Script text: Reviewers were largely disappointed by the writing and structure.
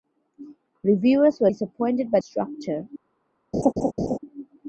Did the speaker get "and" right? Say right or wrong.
wrong